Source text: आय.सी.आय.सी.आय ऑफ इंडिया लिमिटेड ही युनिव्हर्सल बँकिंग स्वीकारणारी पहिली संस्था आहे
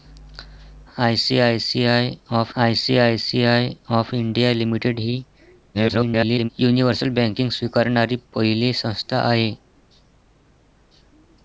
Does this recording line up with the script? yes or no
no